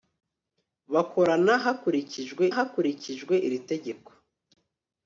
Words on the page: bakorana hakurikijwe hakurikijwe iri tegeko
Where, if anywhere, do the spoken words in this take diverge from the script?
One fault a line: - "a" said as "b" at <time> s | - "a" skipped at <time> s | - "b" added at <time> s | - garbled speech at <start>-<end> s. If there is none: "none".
none